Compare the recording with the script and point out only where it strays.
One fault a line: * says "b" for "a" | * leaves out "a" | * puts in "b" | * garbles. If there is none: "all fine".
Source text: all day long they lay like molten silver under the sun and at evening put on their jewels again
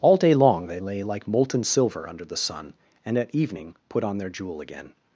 * says "jewel" for "jewels"